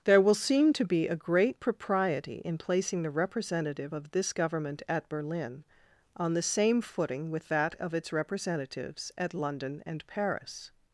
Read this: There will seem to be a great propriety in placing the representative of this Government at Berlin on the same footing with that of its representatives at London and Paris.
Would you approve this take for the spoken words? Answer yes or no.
yes